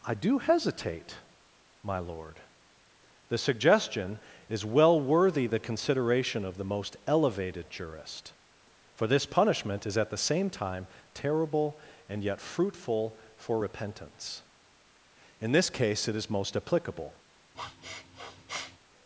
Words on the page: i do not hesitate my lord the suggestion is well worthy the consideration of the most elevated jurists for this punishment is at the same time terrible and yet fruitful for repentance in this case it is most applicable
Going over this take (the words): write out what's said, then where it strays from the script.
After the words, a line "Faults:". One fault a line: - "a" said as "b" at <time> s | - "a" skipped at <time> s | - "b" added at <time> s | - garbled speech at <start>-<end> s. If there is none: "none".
i do hesitate my lord the suggestion is well worthy the consideration of the most elevated jurist for this punishment is at the same time terrible and yet fruitful for repentance in this case it is most applicable
Faults:
- "not" skipped at 0.4 s
- "jurists" said as "jurist" at 7.7 s